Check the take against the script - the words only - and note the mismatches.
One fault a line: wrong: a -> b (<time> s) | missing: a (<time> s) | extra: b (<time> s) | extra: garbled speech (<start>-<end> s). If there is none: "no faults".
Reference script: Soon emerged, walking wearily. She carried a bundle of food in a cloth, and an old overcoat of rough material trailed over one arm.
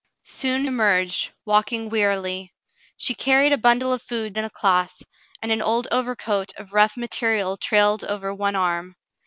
no faults